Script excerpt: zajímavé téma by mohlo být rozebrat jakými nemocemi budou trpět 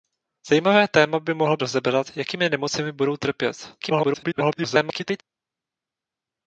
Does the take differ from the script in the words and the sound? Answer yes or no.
yes